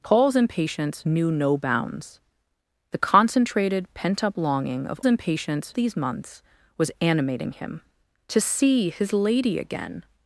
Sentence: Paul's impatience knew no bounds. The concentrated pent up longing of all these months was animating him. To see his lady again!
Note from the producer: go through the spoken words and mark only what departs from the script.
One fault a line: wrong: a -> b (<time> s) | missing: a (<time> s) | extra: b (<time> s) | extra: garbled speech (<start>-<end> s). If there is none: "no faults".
wrong: all -> impatience (5.0 s)